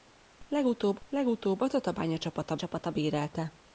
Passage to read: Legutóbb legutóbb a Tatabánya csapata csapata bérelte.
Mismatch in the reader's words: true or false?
false